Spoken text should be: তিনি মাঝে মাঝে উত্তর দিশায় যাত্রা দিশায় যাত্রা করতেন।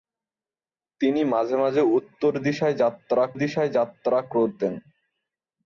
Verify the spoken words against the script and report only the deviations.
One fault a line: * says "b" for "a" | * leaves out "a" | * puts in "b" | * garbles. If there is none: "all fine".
all fine